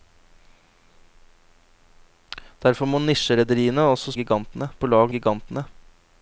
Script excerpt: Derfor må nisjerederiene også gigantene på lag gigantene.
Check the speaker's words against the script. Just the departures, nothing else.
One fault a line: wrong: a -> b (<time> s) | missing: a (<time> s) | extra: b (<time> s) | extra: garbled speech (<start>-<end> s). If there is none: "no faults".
no faults